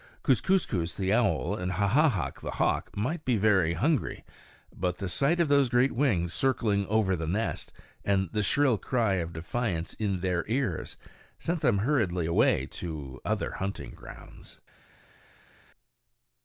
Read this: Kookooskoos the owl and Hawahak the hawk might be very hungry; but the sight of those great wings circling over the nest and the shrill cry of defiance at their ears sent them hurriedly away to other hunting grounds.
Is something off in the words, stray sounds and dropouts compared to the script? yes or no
yes